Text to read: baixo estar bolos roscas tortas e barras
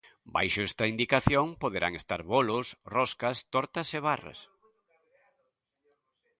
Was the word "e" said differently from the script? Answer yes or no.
no